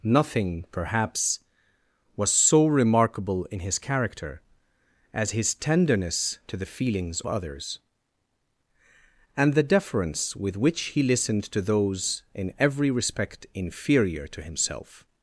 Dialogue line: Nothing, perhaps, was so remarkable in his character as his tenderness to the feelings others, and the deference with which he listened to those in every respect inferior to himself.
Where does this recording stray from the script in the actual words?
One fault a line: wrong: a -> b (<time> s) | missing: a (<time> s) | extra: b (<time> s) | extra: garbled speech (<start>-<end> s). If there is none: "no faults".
no faults